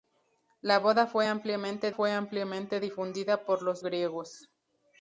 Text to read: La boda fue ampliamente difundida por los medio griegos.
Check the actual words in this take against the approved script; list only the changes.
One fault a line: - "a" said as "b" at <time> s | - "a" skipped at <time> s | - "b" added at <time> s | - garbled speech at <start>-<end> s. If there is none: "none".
- "fue ampliamente" added at 1.9 s
- "medio" skipped at 3.8 s